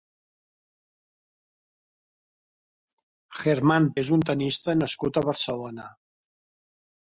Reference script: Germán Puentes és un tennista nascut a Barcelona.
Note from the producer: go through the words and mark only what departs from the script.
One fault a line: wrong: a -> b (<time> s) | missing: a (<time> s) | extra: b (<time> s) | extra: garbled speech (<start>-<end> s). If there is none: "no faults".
missing: Puentes (3.9 s)